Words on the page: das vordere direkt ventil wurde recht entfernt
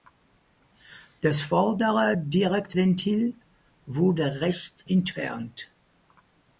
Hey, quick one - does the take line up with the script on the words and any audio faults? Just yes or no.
yes